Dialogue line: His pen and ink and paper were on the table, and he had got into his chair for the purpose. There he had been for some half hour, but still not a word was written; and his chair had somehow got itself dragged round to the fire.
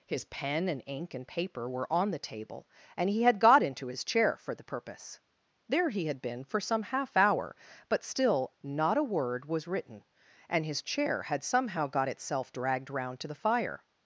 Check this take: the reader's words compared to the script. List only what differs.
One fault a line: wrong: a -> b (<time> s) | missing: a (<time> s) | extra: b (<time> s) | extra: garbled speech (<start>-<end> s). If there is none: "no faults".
no faults